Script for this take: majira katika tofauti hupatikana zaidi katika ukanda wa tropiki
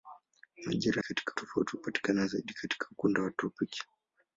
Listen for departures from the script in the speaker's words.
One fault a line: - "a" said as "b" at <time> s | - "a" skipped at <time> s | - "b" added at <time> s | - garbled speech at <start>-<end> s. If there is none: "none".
none